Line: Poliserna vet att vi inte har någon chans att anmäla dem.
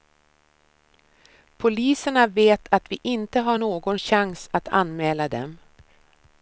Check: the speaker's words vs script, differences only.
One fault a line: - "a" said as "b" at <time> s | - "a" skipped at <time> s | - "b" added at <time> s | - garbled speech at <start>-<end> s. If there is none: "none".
none